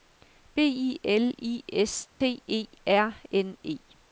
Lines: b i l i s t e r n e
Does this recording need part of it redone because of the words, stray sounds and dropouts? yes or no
yes